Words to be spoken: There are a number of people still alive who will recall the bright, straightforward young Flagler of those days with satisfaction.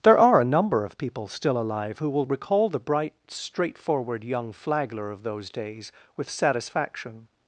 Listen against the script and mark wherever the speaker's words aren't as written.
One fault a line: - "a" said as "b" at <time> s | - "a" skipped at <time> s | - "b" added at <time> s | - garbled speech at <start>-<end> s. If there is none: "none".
none